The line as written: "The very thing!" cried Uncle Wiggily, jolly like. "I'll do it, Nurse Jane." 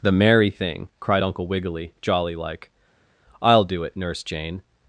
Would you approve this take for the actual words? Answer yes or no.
no